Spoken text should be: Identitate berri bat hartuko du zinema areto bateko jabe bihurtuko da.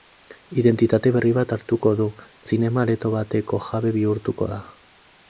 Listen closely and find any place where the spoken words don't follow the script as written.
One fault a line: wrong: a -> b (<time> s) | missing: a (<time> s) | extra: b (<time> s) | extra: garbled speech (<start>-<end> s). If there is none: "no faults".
no faults